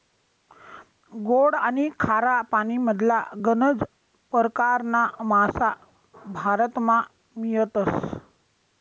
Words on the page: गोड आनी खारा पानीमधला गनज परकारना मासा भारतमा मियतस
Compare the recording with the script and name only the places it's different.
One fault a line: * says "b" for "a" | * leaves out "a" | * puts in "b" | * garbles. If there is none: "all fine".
all fine